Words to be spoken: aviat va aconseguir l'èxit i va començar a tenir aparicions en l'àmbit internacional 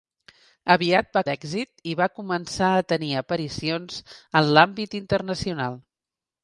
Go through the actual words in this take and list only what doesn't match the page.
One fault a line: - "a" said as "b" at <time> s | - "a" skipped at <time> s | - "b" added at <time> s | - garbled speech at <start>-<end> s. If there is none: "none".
- "aconseguir" skipped at 1.2 s